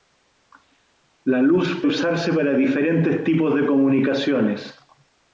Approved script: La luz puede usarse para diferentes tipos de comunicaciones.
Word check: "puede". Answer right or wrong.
wrong